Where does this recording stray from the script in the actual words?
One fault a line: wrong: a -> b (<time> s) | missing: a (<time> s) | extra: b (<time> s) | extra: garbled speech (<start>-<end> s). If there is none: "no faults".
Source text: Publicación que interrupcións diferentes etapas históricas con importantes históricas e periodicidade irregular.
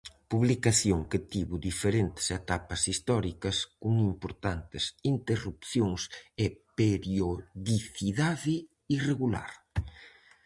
wrong: interrupcións -> tivo (1.3 s)
wrong: históricas -> interrupcións (5.1 s)